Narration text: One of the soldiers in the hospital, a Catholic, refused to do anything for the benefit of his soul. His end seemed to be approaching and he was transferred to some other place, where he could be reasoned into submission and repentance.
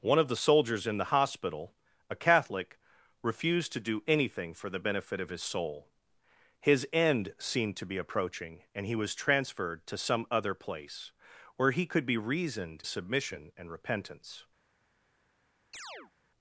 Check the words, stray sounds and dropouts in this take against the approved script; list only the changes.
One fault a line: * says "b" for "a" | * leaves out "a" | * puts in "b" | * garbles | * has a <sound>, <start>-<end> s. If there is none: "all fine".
* leaves out "into"
* has a chirp, 15.7-16.1 s